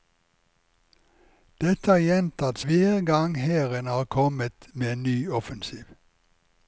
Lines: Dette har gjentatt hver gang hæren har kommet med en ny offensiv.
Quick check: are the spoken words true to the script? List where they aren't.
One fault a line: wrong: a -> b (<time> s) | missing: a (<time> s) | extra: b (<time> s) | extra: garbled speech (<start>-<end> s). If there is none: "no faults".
no faults